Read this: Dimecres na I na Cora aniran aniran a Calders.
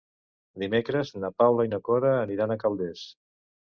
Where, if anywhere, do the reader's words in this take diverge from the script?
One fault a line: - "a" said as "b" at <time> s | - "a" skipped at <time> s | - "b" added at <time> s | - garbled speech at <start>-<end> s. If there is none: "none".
- "Paula" added at 1.4 s
- "aniran" skipped at 2.6 s